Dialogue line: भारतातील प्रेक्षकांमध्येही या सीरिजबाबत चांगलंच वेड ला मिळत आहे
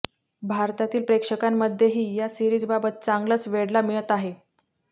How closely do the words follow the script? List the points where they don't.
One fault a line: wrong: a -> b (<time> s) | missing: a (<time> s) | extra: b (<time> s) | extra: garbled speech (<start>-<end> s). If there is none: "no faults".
no faults